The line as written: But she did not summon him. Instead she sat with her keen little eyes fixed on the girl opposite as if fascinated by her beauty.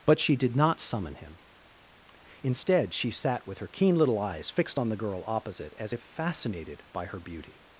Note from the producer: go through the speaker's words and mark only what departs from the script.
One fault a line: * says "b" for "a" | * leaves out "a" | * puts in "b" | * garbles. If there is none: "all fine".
all fine